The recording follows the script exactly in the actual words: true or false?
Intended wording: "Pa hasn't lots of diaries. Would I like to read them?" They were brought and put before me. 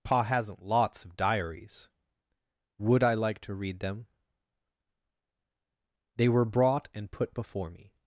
true